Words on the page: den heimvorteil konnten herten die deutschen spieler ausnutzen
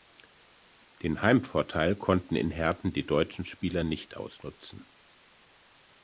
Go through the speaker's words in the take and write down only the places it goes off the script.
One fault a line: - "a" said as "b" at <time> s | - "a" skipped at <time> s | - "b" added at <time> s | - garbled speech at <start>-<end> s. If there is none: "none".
- "in" added at 2.4 s
- "nicht" added at 3.8 s